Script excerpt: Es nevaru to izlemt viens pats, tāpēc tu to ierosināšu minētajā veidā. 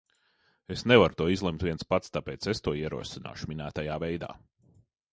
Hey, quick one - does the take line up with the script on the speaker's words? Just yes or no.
no